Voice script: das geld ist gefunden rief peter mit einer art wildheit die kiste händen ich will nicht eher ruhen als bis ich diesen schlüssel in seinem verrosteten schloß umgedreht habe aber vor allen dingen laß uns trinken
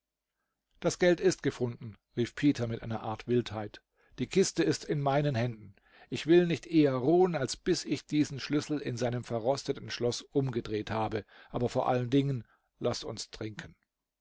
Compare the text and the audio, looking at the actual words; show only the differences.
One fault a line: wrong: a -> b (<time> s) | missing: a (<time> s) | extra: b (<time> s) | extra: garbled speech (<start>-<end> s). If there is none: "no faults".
extra: ist in meinen (4.6 s)